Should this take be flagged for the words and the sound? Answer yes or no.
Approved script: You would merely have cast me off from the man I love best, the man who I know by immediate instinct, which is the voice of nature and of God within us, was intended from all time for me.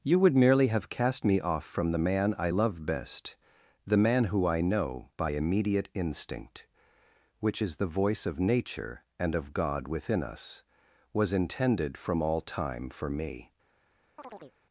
yes